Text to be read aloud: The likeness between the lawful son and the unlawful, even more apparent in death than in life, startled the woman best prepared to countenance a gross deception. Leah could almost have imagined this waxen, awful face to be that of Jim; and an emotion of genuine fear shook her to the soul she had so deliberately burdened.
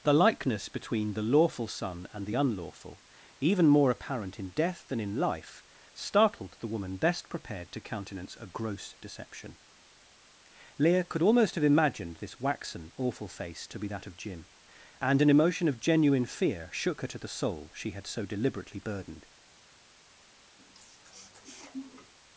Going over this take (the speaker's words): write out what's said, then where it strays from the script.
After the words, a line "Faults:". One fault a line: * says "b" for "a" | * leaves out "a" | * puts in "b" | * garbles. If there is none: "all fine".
The likeness between the lawful son and the unlawful, even more apparent in death than in life, startled the woman best prepared to countenance a gross deception. Leah could almost have imagined this waxen, awful face to be that of Jim; and an emotion of genuine fear shook her to the soul she had so deliberately burdened.
Faults:
all fine